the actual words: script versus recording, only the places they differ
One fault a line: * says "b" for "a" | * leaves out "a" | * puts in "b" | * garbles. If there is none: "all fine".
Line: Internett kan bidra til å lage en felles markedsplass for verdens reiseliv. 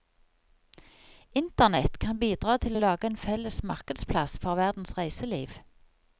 all fine